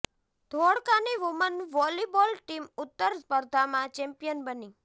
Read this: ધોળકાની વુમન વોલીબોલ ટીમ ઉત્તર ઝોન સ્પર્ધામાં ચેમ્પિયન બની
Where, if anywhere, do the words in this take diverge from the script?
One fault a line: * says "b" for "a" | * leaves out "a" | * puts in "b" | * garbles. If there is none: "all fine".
* leaves out "ઝોન"